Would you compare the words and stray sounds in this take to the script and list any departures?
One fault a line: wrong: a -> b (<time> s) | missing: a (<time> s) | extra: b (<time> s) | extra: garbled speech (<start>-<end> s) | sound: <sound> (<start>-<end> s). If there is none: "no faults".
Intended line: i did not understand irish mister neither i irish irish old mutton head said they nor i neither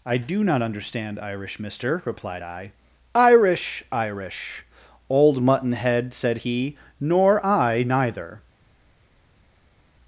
wrong: did -> do (0.2 s)
wrong: neither -> replied (2.0 s)
wrong: they -> he (6.4 s)